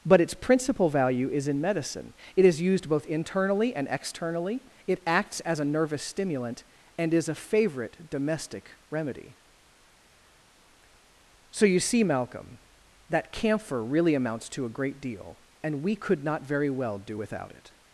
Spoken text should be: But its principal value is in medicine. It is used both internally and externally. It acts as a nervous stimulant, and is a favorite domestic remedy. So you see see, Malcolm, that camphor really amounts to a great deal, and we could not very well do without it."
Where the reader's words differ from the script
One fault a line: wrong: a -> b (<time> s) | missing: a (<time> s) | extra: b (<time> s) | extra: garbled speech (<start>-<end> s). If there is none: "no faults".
missing: see (12.0 s)